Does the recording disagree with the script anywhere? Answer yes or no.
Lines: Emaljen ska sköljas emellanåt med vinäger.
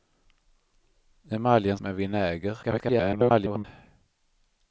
yes